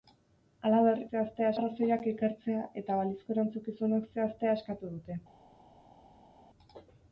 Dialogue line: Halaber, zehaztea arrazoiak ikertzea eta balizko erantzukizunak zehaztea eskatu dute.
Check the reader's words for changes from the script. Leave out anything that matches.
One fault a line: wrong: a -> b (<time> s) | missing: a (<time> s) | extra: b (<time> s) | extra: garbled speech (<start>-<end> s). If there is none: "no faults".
no faults